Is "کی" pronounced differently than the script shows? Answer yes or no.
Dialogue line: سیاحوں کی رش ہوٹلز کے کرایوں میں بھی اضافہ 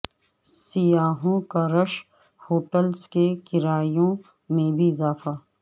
yes